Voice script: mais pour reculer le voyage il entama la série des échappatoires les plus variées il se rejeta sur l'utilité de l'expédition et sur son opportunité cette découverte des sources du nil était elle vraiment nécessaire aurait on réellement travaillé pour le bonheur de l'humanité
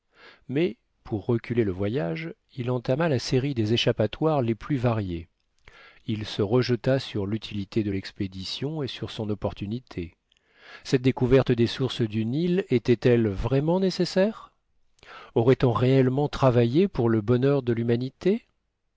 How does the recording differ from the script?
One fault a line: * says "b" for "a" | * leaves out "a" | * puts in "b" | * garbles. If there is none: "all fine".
all fine